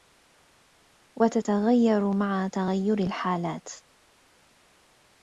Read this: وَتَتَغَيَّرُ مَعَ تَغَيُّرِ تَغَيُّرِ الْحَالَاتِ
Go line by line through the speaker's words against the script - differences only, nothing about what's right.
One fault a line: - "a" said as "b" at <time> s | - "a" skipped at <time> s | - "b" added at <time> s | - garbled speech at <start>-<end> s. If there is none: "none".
- "تَغَيُّرِ" skipped at 3.0 s